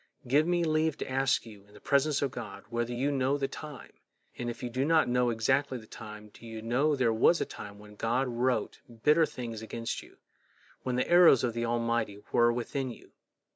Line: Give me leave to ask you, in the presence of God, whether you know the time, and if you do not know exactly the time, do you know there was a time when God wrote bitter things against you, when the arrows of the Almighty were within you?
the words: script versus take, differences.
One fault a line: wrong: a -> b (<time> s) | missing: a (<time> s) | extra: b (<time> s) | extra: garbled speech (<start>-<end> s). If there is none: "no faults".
no faults